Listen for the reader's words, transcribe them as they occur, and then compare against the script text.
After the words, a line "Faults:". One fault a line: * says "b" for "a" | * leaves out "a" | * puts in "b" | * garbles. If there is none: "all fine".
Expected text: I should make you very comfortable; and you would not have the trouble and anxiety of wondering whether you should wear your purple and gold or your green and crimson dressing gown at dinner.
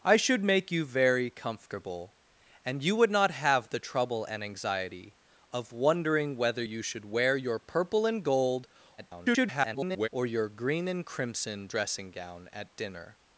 I should make you very comfortable; and you would not have the trouble and anxiety of wondering whether you should wear your purple and gold [garbled] or your green and crimson dressing gown at dinner.
Faults:
* garbles